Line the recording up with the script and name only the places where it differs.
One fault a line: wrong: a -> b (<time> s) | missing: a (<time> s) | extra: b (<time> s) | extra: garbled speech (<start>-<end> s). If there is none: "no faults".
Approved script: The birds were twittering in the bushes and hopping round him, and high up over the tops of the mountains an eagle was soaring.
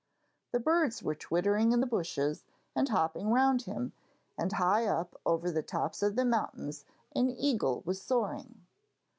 no faults